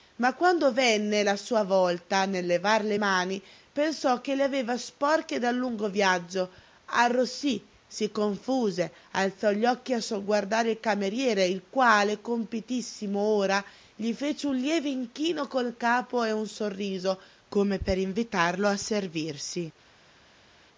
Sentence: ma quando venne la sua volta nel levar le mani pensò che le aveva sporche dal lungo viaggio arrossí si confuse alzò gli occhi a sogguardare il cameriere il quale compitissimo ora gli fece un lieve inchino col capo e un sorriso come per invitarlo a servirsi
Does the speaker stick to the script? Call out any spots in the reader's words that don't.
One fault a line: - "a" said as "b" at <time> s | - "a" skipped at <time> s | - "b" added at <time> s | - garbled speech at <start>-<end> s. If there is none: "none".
none